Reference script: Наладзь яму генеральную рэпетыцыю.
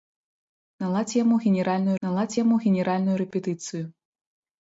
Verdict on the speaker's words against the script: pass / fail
fail